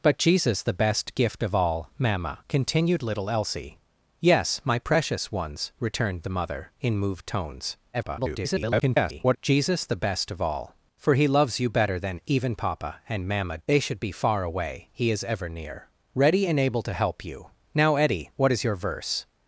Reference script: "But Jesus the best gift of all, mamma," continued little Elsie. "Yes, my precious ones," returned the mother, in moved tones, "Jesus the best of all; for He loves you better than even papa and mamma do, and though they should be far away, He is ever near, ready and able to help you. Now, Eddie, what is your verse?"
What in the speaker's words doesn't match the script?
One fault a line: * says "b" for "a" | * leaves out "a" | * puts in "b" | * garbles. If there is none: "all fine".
* garbles
* leaves out "do and though"